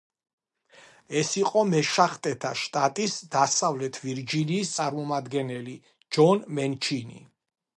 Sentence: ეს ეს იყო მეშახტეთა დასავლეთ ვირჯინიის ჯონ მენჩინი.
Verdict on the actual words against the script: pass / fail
fail